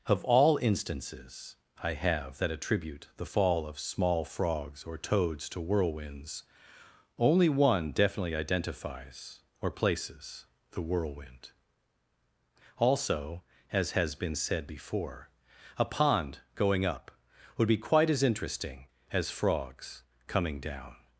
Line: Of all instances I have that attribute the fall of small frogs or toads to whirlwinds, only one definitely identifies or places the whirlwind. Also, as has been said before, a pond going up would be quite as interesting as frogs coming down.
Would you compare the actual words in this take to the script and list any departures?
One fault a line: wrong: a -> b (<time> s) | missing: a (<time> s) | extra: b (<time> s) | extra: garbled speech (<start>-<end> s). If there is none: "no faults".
no faults